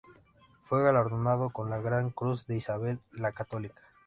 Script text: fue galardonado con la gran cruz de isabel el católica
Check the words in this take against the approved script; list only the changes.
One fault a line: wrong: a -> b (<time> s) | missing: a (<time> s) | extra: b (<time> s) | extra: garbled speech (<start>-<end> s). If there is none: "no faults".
wrong: el -> la (3.1 s)